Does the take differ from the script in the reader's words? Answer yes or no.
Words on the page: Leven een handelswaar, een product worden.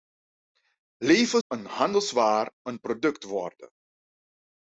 no